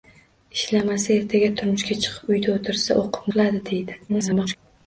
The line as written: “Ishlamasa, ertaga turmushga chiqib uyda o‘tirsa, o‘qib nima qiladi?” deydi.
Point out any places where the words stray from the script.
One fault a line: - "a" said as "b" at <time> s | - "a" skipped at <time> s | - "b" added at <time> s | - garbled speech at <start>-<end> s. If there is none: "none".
- "nima" skipped at 3.3 s
- garbled speech at 4.1-4.6 s